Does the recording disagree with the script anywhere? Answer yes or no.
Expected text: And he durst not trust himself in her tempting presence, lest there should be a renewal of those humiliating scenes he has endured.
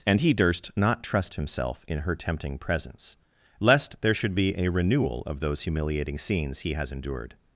no